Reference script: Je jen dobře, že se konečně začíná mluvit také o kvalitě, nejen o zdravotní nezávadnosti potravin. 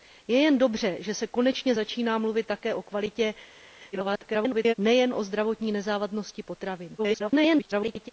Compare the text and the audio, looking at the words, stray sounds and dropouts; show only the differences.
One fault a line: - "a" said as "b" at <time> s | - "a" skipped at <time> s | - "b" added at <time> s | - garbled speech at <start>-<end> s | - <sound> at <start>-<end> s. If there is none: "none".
- garbled speech at 3.9-4.7 s
- garbled speech at 7.0-8.1 s